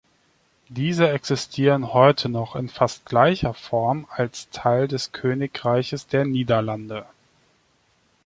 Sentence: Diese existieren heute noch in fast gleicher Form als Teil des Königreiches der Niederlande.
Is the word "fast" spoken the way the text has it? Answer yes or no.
yes